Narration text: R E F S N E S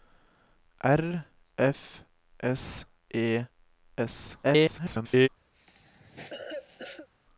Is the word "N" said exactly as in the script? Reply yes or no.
no